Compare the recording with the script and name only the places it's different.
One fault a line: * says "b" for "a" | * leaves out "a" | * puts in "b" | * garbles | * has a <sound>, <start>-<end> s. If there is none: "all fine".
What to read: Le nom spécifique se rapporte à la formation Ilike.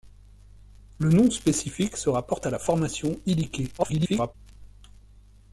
* garbles